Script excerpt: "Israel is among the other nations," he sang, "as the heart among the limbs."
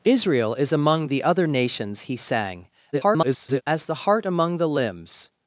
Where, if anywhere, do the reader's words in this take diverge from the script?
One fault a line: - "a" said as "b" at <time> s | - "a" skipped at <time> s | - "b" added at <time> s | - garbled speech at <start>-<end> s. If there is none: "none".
- garbled speech at 2.9-3.6 s